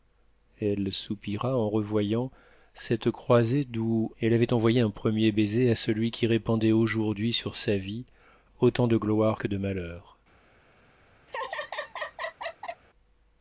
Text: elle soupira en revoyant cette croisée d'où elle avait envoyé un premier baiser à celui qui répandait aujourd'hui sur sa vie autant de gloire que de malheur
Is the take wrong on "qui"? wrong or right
right